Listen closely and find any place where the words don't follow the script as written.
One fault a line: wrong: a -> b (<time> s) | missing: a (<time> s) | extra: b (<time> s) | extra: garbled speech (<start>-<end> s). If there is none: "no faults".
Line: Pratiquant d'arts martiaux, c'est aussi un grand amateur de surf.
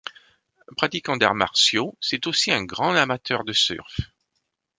no faults